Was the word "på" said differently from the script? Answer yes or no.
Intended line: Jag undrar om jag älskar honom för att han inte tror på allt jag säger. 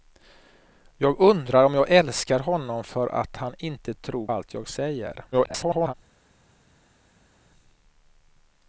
yes